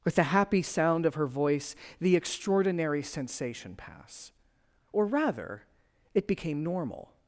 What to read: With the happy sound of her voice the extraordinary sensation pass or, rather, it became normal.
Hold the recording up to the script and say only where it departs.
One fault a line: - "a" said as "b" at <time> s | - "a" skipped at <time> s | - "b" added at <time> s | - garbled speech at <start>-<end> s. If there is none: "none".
none